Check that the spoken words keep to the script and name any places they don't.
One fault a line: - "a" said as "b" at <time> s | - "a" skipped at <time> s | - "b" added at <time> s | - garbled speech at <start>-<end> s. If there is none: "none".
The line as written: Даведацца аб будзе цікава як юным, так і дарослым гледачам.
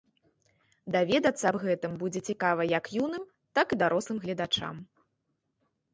- "гэтым" added at 1.6 s